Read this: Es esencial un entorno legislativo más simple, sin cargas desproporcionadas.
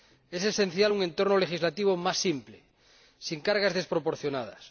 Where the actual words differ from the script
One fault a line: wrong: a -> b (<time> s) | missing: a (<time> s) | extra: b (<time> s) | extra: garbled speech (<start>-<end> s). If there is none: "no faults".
no faults